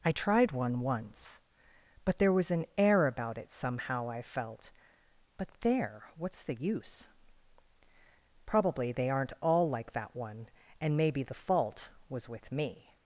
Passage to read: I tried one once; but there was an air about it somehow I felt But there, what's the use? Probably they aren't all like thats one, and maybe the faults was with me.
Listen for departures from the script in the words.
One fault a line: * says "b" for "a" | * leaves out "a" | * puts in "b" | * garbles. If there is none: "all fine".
* says "that" for "thats"
* says "fault" for "faults"